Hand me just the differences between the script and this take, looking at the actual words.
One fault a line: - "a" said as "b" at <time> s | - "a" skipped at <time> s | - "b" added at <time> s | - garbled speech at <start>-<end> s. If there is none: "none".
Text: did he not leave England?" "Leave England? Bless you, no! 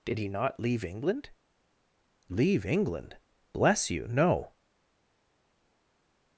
none